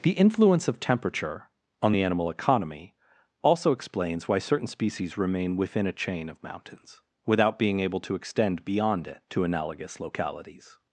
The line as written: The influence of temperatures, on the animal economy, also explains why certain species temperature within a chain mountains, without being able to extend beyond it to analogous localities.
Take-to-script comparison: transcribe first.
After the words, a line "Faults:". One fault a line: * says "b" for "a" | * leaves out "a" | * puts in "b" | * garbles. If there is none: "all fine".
The influence of temperature, on the animal economy, also explains why certain species remain within a chain of mountains, without being able to extend beyond it to analogous localities.
Faults:
* says "temperature" for "temperatures"
* says "remain" for "temperature"
* puts in "of"